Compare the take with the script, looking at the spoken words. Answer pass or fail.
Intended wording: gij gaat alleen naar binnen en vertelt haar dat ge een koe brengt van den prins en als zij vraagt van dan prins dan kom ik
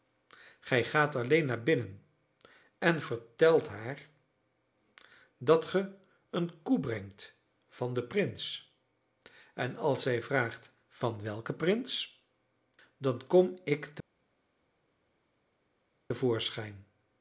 fail